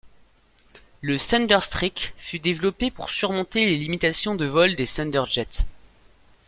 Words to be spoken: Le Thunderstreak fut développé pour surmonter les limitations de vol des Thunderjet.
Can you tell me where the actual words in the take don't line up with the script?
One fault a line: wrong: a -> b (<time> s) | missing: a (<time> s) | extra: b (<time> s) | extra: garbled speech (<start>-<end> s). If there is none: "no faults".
no faults